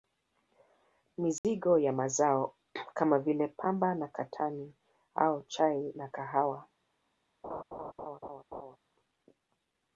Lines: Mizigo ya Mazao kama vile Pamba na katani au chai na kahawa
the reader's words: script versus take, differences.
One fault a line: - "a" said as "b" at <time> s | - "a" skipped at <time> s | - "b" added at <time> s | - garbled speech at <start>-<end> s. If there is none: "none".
none